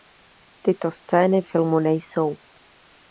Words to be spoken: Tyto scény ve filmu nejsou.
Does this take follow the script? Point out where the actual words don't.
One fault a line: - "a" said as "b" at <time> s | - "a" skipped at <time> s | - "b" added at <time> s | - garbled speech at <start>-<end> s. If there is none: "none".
- "ve" skipped at 1.4 s